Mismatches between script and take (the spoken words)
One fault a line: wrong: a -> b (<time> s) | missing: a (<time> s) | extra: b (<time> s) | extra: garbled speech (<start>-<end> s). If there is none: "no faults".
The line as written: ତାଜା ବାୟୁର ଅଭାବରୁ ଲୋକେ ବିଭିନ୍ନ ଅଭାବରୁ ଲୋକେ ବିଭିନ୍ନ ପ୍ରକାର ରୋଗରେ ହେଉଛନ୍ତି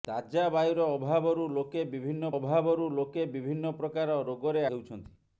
no faults